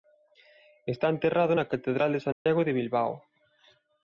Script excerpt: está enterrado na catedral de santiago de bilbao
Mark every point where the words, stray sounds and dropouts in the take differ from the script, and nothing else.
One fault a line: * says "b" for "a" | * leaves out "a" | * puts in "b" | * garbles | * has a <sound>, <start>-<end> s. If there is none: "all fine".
* has a dropout, 2.3-2.5 s